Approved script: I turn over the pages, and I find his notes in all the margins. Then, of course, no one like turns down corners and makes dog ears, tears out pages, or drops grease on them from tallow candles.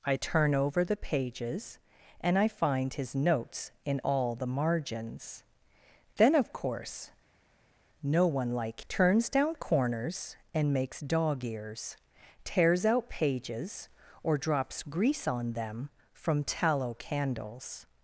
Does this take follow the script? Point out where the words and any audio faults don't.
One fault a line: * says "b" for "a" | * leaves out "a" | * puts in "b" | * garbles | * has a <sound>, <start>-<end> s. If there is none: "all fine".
all fine